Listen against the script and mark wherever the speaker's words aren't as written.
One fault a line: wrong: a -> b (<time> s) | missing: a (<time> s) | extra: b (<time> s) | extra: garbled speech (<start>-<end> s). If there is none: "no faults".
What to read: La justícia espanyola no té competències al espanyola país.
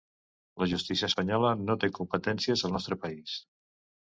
wrong: espanyola -> nostre (2.7 s)